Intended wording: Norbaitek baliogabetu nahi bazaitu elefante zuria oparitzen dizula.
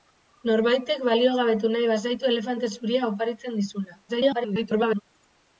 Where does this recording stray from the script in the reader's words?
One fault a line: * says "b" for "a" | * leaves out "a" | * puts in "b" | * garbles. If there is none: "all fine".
* garbles